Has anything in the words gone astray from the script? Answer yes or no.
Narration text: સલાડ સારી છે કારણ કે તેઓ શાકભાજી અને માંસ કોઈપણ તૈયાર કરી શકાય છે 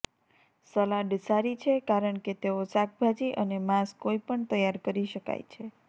no